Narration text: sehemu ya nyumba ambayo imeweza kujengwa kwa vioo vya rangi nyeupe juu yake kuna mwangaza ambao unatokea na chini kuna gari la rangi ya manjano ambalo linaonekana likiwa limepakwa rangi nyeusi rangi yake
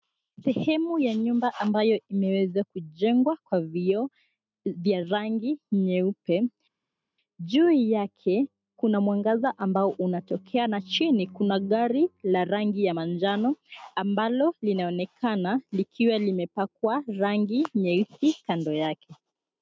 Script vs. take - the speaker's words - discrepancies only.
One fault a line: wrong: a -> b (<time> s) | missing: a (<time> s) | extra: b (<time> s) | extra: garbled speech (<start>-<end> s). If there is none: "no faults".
wrong: rangi -> kando (18.5 s)